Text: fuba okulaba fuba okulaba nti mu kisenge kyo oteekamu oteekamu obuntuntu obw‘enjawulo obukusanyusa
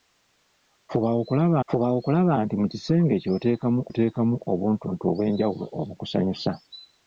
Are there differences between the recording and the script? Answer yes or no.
no